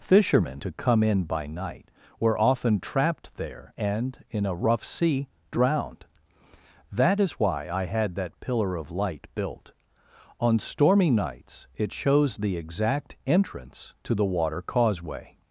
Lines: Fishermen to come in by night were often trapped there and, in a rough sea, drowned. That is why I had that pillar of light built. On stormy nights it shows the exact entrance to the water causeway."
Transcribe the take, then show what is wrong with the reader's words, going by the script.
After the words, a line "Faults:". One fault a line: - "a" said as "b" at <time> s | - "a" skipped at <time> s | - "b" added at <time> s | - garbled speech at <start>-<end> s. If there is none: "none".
Fishermen to come in by night were often trapped there and, in a rough sea, drowned. That is why I had that pillar of light built. On stormy nights it shows the exact entrance to the water causeway."
Faults:
none